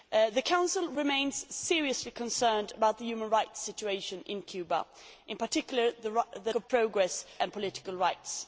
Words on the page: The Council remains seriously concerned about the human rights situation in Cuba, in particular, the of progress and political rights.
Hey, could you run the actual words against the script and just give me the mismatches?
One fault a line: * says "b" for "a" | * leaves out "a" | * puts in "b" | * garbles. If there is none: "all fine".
all fine